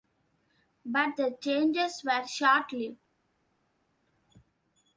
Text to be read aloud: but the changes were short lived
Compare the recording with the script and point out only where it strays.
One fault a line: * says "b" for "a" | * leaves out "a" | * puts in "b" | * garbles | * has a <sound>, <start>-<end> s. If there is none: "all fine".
all fine